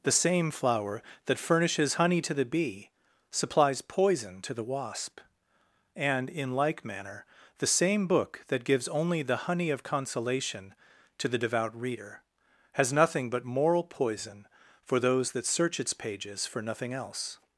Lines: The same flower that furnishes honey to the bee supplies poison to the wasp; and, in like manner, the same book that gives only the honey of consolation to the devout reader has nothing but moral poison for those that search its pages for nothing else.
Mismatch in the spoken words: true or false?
false